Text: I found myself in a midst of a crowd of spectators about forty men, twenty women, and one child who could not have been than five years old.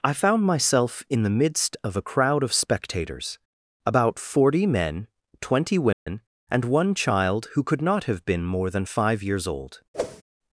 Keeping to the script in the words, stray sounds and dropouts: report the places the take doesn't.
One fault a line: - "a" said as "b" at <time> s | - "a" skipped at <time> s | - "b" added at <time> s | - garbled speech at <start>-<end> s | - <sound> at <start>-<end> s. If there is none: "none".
- "a" said as "the" at 1.2 s
- dropout at 5.9-6.1 s
- "more" added at 8.4 s
- whoosh at 9.9-10.2 s